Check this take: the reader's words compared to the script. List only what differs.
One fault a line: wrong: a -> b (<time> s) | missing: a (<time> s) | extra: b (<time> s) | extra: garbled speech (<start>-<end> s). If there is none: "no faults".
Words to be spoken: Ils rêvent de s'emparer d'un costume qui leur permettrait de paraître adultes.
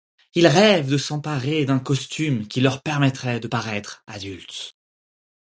no faults